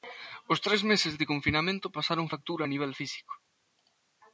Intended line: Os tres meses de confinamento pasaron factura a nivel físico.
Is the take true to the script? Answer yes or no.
yes